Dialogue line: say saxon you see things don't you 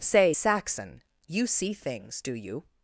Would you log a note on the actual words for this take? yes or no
yes